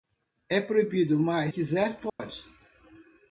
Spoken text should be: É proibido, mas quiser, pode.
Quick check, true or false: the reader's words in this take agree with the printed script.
true